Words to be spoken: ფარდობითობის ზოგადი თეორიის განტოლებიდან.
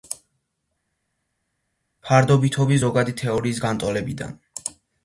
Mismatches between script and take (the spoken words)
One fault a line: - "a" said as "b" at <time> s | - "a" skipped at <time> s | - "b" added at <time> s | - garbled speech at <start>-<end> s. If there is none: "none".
none